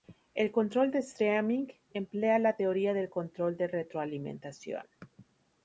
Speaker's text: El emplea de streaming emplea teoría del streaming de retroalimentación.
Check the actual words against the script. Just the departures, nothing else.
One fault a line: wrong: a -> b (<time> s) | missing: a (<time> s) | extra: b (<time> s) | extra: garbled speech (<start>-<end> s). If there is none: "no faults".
wrong: emplea -> control (0.5 s)
extra: la (2.4 s)
wrong: streaming -> control (3.1 s)